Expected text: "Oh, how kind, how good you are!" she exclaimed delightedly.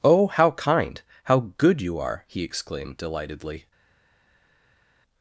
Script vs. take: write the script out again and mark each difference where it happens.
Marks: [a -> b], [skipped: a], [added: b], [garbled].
"Oh, how kind, how good you are!" [she -> he] exclaimed delightedly.